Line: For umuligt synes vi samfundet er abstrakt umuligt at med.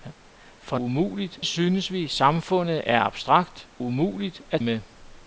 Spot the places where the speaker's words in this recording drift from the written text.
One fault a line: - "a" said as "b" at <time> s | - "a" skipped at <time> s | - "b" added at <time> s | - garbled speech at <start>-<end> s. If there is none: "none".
none